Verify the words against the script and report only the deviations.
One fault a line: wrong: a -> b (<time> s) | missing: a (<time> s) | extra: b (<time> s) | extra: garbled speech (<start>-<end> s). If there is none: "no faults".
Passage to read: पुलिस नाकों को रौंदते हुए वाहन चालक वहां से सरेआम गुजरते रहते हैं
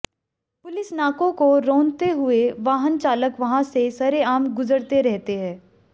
no faults